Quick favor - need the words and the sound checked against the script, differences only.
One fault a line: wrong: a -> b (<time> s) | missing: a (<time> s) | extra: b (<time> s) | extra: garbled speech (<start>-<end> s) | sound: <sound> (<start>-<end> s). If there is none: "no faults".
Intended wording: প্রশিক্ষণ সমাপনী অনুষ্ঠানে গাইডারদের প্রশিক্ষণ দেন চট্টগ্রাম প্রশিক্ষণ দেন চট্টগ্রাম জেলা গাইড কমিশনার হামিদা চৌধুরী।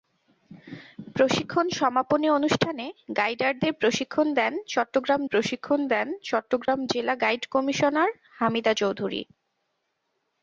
sound: dropout (6.7-6.7 s)